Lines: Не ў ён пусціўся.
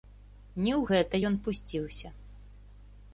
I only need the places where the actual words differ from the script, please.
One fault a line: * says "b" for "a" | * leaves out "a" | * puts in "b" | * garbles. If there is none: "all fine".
* puts in "гэта"